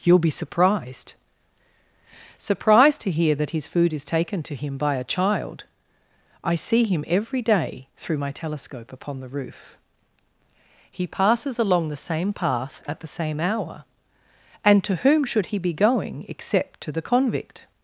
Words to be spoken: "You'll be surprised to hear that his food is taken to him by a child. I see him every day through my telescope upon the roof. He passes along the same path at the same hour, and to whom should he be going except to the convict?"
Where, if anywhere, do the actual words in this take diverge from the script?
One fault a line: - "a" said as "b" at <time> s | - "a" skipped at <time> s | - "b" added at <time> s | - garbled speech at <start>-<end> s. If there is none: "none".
- "surprised" added at 2.4 s